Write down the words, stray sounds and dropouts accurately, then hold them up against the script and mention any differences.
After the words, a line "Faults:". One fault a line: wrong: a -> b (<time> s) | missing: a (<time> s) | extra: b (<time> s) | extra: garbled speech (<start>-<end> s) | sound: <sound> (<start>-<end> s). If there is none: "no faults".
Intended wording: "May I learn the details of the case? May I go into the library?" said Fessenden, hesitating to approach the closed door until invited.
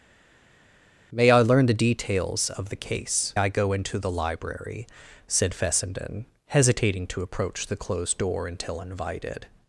"May I learn the details of the case? I go into the library?" said Fessenden, hesitating to approach the closed door until invited.
Faults:
missing: May (3.3 s)